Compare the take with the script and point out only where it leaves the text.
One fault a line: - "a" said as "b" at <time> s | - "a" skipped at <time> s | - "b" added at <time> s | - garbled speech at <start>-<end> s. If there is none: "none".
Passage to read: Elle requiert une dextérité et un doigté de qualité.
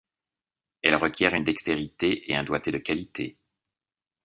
none